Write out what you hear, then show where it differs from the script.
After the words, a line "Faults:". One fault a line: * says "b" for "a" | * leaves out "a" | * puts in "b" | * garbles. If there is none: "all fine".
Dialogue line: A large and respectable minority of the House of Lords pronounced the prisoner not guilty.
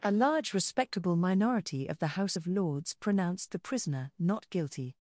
A large respectable minority of the House of Lords pronounced the prisoner not guilty.
Faults:
* leaves out "and"